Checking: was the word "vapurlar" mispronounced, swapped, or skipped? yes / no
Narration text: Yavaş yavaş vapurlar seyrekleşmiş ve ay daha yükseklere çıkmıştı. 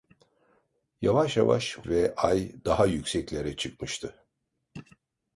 yes